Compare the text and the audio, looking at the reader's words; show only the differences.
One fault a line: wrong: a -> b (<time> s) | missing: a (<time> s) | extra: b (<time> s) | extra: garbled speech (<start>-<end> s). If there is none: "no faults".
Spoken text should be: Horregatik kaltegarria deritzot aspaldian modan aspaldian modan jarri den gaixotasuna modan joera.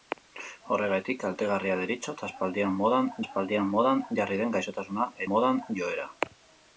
no faults